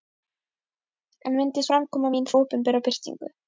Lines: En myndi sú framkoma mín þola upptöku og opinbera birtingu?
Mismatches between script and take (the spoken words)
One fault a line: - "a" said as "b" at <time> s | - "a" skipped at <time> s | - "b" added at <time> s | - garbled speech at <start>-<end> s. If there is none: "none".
- "sú" skipped at 1.6 s
- "þola upptöku og" skipped at 2.3 s